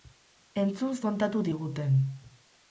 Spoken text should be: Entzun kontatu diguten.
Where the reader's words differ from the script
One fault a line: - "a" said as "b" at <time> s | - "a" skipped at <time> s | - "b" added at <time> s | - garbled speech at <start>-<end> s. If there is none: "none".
none